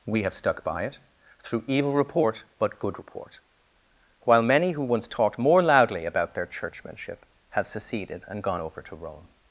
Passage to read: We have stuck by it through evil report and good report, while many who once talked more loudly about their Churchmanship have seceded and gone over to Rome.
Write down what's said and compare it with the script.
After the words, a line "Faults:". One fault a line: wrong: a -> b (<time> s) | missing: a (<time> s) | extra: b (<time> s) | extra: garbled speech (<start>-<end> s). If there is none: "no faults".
We have stuck by it through evil report but good report, while many who once talked more loudly about their Churchmanship have seceded and gone over to Rome.
Faults:
wrong: and -> but (2.6 s)